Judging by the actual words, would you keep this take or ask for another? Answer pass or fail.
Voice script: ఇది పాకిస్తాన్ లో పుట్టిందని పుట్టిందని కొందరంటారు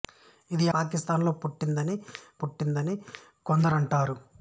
pass